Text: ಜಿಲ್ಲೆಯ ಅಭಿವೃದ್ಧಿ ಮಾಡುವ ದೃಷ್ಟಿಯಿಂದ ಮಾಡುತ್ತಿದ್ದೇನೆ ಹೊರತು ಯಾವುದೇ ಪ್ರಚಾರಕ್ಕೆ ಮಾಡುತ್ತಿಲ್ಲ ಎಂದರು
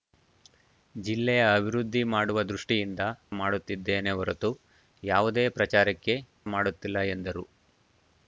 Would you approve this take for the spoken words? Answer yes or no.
yes